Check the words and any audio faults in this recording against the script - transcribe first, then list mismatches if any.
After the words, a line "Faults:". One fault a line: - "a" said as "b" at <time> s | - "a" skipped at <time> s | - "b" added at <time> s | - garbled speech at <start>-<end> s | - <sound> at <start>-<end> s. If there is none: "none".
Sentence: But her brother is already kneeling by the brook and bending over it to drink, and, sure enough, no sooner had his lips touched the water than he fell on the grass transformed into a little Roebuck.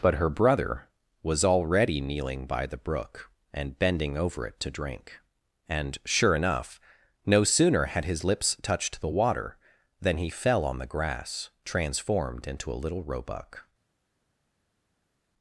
But her brother was already kneeling by the brook and bending over it to drink, and, sure enough, no sooner had his lips touched the water than he fell on the grass transformed into a little Roebuck.
Faults:
- "is" said as "was" at 1.2 s